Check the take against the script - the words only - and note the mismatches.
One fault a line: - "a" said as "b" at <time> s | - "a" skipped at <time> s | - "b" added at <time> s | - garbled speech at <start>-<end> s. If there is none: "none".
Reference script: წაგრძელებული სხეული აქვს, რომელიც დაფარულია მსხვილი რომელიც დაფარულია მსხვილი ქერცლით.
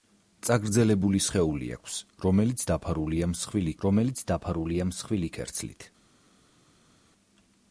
none